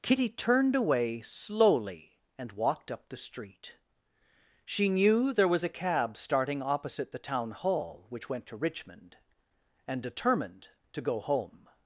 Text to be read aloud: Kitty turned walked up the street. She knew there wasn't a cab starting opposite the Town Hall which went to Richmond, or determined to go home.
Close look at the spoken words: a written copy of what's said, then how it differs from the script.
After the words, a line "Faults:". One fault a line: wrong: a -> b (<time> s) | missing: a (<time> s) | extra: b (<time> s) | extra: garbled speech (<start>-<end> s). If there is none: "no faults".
Kitty turned away slowly and walked up the street. She knew there was a cab starting opposite the Town Hall which went to Richmond, and determined to go home.
Faults:
extra: away slowly and (0.8 s)
wrong: wasn't -> was (5.5 s)
wrong: or -> and (9.9 s)